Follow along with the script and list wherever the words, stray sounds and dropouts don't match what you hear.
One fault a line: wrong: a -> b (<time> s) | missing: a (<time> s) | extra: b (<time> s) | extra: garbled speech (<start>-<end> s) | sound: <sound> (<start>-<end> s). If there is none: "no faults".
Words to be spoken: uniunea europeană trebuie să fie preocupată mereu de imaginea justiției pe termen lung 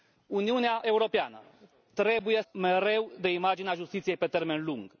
missing: să fie preocupată (2.4 s)